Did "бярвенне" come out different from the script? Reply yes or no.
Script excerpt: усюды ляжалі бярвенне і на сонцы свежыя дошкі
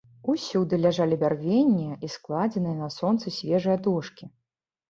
no